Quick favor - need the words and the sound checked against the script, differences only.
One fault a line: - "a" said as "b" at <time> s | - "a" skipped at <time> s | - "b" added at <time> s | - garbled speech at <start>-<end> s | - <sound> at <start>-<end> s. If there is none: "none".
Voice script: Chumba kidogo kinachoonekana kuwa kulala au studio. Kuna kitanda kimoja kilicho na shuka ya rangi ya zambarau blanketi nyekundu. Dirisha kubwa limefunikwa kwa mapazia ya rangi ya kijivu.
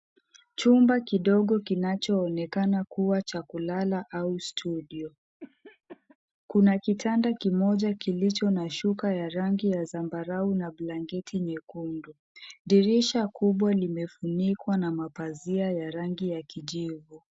- "cha" added at 3.2 s
- cough at 5.4-6.2 s
- "na" added at 10.5 s
- "kwa" said as "na" at 14.8 s